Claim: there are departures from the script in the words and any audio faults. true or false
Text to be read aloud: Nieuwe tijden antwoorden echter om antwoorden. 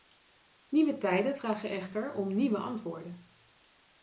true